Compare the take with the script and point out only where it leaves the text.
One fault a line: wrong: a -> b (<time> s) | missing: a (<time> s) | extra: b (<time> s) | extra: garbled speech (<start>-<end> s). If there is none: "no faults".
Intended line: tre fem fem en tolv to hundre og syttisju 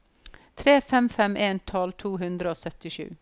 no faults